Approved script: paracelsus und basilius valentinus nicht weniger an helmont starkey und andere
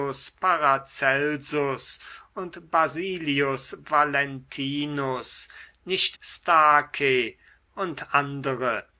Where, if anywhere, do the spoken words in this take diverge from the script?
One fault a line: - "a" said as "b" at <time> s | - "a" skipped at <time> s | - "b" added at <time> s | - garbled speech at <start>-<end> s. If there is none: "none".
- "weniger an helmont" skipped at 6.2 s